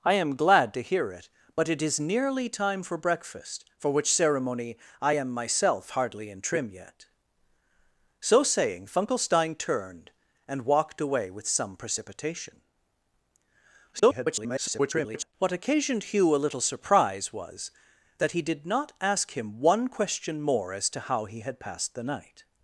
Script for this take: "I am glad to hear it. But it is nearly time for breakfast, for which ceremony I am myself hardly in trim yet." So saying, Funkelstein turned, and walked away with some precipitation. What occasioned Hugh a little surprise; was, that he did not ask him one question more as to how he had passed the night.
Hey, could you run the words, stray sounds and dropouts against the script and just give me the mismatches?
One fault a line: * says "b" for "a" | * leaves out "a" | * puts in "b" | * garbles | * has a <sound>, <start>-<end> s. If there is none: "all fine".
* garbles